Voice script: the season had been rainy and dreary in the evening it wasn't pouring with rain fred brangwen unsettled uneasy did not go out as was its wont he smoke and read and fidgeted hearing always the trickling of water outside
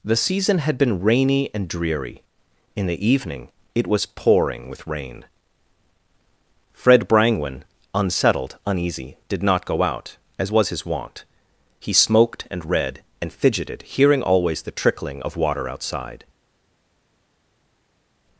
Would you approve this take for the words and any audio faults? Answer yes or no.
no